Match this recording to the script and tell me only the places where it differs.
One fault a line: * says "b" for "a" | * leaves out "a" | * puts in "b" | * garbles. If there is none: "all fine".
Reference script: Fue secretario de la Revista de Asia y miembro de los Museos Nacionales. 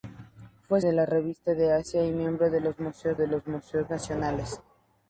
* leaves out "secretario"
* puts in "de los Museos"